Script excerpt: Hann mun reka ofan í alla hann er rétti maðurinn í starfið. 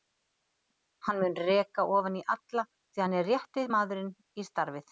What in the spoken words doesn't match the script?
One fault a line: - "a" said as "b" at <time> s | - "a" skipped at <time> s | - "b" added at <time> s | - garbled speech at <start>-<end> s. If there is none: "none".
- "því" added at 2.7 s